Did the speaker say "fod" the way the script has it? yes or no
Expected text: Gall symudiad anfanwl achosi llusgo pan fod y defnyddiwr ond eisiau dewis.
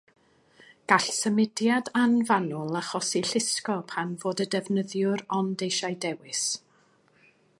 yes